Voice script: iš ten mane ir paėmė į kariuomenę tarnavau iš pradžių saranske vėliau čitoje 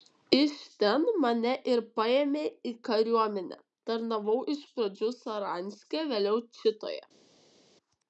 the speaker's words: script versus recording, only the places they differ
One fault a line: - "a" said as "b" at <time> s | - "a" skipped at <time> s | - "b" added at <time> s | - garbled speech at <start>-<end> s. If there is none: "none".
none